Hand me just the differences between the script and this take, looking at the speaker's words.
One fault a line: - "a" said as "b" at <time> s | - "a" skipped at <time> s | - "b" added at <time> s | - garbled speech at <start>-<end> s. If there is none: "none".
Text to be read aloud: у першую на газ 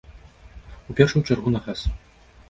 - "чаргу" added at 1.2 s